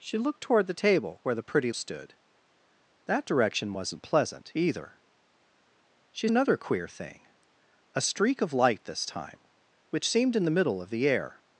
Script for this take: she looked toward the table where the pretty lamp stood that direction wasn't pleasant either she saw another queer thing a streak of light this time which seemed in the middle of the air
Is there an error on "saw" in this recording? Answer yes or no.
yes